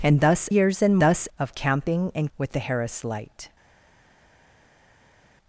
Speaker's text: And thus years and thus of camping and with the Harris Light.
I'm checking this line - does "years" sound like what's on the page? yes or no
yes